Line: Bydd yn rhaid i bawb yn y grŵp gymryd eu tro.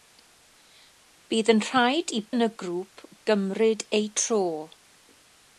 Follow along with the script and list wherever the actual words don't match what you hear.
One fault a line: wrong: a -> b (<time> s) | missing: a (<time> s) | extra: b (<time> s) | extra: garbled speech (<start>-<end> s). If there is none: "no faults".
missing: bawb (2.2 s)